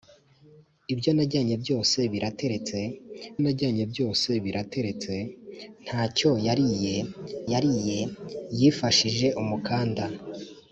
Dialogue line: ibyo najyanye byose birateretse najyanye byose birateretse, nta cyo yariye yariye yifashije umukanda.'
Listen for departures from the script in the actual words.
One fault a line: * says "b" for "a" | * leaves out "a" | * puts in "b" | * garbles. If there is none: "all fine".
all fine